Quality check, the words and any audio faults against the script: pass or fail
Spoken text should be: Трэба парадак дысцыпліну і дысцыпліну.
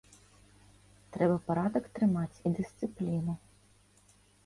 fail